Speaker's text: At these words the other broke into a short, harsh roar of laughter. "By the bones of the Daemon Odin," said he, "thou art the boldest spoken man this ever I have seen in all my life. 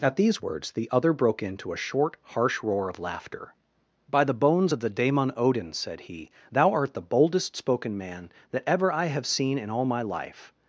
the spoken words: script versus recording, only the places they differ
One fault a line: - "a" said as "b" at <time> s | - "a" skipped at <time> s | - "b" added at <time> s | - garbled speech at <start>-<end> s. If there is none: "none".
- "this" said as "that" at 8.5 s